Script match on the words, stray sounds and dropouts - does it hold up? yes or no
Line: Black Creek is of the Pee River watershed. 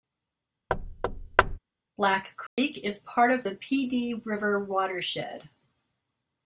no